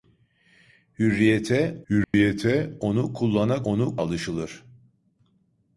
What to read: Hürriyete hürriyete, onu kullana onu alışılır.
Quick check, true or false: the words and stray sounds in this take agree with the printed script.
false